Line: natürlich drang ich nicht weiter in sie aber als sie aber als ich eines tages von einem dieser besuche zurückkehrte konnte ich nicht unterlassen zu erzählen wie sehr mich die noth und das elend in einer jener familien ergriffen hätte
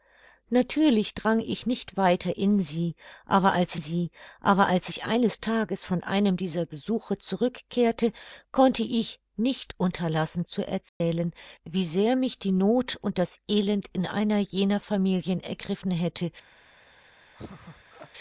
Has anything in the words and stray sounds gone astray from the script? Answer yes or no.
yes